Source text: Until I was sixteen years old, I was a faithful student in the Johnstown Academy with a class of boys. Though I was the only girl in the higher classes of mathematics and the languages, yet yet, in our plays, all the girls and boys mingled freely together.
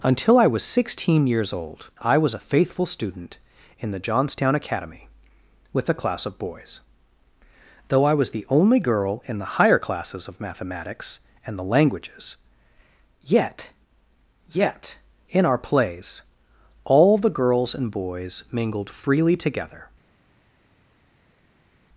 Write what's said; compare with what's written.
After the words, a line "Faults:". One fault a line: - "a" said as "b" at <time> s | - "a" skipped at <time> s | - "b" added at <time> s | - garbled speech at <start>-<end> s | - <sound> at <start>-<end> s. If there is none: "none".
Until I was sixteen years old, I was a faithful student in the Johnstown Academy with a class of boys. Though I was the only girl in the higher classes of mathematics and the languages, yet yet, in our plays, all the girls and boys mingled freely together.
Faults:
none